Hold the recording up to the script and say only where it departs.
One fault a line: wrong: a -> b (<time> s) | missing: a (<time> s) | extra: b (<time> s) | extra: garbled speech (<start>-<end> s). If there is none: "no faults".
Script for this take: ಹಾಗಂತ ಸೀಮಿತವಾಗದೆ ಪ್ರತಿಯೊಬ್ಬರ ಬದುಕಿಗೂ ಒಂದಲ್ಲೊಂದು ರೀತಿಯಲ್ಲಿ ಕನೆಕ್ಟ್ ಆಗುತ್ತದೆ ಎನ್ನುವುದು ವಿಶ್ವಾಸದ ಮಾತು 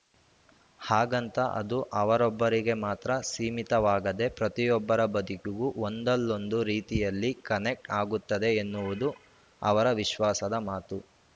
extra: ಅದು ಅವರೊಬ್ಬರಿಗೆ ಮಾತ್ರ (1.6 s)
extra: ಅವರ (9.6 s)